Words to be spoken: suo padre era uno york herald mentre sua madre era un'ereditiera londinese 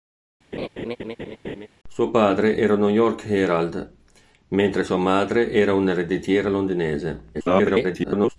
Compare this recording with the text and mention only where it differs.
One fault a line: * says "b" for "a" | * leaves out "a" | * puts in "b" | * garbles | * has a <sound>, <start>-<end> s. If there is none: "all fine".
* has a laugh, 0.5-1.7 s
* garbles